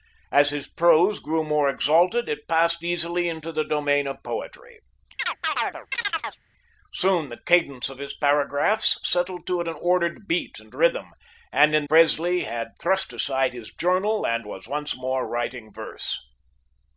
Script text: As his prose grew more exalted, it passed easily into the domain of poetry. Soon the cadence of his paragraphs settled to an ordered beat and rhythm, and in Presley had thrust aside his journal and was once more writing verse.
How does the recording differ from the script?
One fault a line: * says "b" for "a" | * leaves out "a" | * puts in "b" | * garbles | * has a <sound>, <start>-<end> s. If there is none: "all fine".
* has a chirp, 5.2-6.4 s